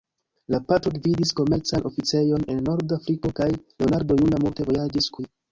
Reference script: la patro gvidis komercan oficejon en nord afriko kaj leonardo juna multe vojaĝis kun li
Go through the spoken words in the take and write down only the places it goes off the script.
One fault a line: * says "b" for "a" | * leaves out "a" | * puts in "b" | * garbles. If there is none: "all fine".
* leaves out "kun"